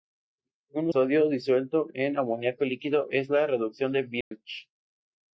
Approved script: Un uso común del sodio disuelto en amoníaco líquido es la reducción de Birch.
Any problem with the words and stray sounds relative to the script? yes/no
yes